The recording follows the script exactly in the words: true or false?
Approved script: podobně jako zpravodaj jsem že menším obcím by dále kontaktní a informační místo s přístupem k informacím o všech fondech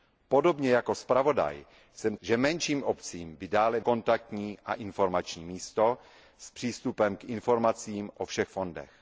true